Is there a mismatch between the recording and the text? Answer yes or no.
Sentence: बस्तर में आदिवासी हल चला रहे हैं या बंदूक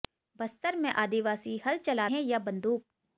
yes